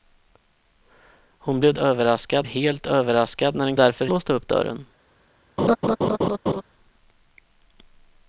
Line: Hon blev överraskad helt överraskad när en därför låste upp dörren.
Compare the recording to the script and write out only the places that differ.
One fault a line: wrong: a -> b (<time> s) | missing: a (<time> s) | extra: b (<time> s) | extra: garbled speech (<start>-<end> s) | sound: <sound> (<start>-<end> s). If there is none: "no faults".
sound: laugh (5.6-6.6 s)